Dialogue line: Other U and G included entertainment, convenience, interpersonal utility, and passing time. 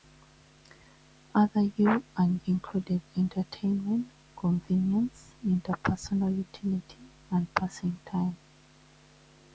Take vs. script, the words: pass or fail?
fail